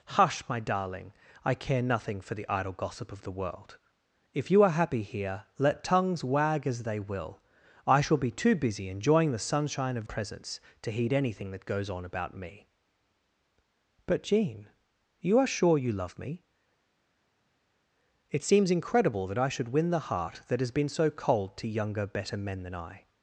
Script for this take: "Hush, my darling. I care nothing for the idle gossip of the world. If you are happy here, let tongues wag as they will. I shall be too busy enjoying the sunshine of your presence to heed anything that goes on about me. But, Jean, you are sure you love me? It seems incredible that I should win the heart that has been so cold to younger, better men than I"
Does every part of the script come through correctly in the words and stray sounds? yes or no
no